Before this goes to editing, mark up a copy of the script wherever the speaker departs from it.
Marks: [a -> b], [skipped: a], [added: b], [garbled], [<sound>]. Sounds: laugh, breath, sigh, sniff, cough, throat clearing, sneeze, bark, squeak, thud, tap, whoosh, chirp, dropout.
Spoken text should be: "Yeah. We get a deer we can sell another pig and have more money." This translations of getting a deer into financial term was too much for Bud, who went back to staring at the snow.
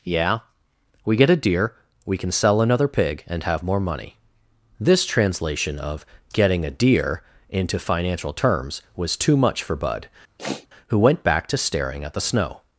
"Yeah. We get a deer we can sell another pig and have more money." This [translations -> translation] of getting a deer into financial [term -> terms] was too much for Bud, [sniff] who went back to staring at the snow.